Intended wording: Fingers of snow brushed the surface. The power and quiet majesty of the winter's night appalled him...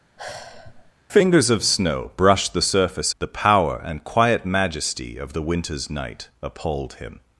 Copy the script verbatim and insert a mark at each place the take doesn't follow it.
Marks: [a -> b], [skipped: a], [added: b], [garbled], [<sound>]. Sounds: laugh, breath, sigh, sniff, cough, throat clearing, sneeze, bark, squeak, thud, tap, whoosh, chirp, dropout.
[sigh] Fingers of snow brushed the surface. The power and quiet majesty of the winter's night appalled him...